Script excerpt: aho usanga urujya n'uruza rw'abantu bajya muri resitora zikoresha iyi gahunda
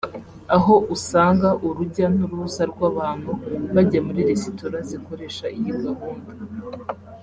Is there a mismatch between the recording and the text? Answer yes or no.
no